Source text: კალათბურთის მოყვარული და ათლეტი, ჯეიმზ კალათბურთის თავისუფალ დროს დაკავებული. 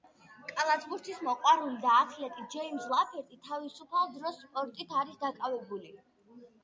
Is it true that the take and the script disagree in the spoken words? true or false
true